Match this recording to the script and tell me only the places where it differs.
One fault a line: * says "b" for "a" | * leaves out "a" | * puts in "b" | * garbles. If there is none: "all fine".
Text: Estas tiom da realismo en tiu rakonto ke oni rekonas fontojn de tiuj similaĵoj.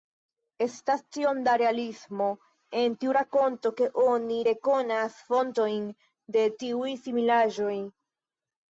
all fine